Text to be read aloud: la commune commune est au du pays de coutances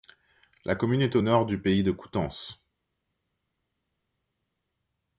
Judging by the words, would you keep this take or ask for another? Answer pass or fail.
fail